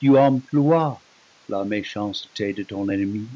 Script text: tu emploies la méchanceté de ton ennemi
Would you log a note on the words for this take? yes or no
no